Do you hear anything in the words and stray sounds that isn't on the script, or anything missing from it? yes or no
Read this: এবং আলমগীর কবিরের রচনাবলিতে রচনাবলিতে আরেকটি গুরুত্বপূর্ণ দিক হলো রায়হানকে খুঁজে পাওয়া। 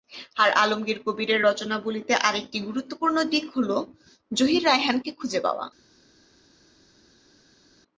yes